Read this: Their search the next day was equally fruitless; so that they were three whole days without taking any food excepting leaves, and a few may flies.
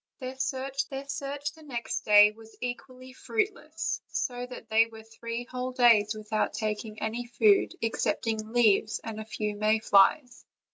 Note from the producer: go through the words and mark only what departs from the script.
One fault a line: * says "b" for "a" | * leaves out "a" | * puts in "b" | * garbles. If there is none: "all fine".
* puts in "their search"